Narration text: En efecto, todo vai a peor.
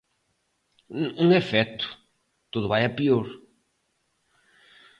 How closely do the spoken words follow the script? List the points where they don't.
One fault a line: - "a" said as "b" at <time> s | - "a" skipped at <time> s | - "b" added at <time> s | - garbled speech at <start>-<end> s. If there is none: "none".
none